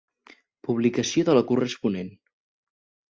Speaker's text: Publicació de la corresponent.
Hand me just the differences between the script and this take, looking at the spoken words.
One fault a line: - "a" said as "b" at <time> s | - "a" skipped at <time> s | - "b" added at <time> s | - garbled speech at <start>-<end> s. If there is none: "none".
none